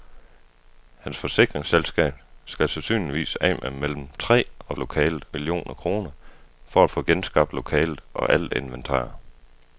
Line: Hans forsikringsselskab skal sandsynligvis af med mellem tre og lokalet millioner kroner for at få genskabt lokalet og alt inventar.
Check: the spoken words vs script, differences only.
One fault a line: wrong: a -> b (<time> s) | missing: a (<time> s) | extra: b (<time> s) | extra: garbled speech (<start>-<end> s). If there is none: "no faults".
no faults